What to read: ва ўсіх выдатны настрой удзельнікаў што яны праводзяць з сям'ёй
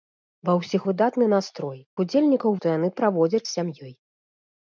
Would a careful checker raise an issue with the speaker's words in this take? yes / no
no